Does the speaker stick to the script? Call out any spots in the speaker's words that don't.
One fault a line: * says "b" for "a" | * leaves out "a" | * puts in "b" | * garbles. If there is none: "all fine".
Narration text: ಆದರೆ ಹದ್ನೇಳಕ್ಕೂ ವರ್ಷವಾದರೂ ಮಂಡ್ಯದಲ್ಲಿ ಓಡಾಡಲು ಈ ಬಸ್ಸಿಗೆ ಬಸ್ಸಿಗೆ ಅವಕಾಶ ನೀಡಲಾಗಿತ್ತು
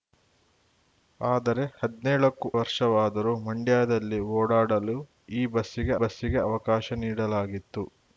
all fine